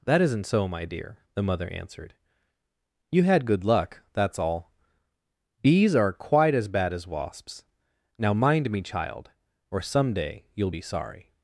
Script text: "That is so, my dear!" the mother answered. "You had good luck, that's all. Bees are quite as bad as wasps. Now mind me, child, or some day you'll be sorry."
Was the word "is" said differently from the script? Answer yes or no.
yes